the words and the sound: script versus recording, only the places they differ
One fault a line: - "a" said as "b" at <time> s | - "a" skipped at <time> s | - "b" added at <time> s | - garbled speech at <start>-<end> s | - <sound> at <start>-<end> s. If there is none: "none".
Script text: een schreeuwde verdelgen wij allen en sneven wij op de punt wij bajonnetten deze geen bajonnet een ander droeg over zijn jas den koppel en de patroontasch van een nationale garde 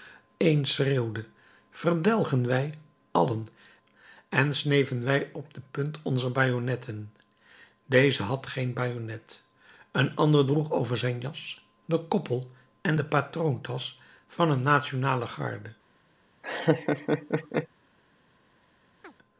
- "wij" said as "onzer" at 6.0 s
- "had" added at 8.2 s
- laugh at 16.4-17.7 s
- chirp at 19.0-19.1 s